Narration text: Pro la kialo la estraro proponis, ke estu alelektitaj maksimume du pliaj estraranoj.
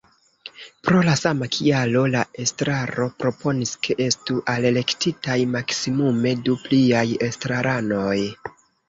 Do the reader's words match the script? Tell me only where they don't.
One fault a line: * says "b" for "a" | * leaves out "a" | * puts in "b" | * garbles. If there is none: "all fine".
* puts in "sama"